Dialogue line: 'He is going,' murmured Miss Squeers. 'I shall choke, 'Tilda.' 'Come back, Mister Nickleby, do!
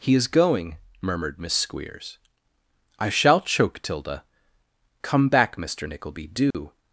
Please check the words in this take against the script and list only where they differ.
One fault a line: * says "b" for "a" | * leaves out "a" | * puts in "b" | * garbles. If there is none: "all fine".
all fine